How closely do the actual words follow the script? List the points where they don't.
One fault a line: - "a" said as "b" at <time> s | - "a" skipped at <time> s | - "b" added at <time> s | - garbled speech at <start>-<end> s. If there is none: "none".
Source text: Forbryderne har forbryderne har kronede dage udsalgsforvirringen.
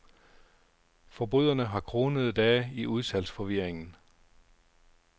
- "forbryderne har" skipped at 1.8 s
- "i" added at 2.7 s